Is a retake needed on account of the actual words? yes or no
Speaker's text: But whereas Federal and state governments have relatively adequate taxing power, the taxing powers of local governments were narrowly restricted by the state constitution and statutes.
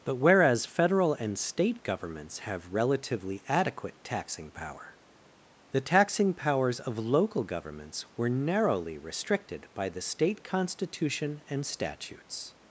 no